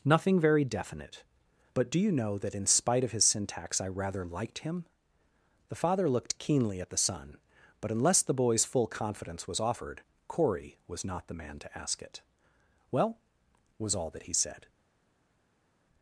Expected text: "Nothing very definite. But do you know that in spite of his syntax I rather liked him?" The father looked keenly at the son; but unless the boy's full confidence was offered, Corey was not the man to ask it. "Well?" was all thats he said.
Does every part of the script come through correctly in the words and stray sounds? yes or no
no